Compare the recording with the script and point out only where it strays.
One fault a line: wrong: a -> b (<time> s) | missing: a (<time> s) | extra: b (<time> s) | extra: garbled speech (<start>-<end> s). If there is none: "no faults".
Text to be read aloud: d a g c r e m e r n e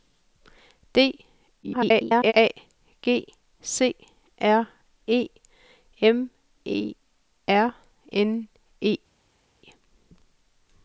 extra: garbled speech (1.6-2.3 s)